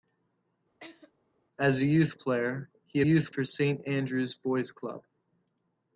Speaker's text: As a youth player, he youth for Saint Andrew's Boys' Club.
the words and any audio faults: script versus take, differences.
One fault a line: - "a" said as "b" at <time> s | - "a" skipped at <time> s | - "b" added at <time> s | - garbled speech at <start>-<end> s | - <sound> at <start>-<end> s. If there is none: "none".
- laugh at 0.8-1.1 s